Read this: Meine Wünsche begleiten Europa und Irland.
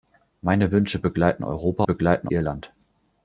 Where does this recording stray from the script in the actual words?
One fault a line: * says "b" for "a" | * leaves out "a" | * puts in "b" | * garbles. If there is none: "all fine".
* says "begleiten" for "und"